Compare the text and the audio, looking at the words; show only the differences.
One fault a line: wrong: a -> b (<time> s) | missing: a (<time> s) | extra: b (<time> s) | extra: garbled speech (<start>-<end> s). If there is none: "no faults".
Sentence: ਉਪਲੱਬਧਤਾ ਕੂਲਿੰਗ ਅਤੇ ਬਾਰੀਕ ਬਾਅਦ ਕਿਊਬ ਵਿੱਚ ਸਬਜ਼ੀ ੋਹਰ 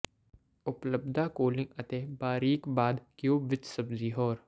no faults